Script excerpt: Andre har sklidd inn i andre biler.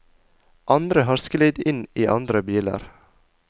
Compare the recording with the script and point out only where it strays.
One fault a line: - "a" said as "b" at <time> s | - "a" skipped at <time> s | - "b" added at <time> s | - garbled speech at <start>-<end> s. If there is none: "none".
none